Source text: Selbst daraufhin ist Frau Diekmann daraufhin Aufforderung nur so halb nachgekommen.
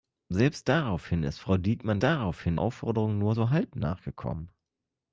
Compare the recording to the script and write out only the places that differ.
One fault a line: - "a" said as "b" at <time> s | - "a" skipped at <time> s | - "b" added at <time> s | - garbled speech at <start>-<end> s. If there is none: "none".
none